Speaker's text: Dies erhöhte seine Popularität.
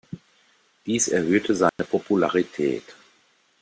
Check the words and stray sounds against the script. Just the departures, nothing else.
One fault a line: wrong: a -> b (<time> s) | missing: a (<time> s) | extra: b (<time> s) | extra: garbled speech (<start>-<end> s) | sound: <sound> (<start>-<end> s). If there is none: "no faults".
sound: dropout (1.7-1.8 s)